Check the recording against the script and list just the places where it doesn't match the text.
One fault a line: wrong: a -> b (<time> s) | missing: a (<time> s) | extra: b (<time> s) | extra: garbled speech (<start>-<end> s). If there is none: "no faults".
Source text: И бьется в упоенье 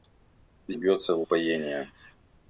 no faults